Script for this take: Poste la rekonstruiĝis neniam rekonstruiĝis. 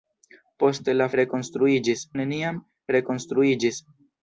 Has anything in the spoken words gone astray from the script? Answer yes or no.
no